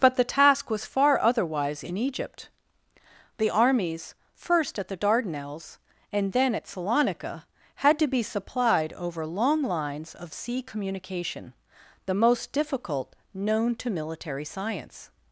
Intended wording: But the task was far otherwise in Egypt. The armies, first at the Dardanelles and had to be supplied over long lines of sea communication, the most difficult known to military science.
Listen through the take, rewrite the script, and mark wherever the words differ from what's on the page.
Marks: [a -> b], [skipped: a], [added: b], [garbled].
But the task was far otherwise in Egypt. The armies, first at the Dardanelles and [added: then at Salonika] had to be supplied over long lines of sea communication, the most difficult known to military science.